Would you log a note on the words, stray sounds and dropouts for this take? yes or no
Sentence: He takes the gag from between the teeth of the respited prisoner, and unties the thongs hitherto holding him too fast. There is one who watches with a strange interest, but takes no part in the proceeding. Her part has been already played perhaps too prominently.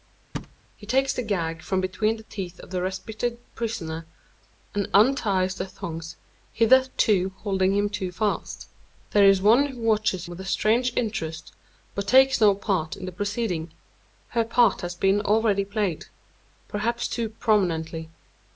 yes